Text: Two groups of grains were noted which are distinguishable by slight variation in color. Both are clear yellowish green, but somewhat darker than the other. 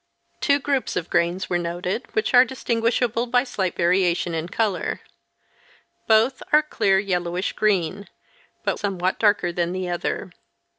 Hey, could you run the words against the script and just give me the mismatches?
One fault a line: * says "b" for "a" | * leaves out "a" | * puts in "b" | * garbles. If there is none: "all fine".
all fine